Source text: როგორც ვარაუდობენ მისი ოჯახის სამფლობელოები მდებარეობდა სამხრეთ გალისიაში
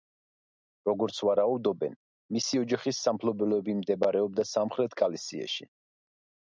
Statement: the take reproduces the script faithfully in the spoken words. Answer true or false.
true